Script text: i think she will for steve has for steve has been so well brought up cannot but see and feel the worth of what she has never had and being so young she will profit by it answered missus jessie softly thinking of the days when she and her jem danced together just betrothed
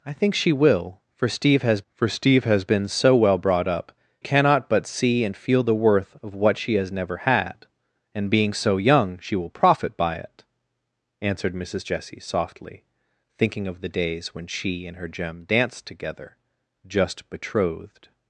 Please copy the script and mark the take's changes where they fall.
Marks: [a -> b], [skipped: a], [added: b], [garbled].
i think she will for steve has for steve has been so well brought up cannot but see and feel the worth of what she has never had and being so young she will profit by it answered missus jessie softly thinking of the days when she and her jem danced together just betrothed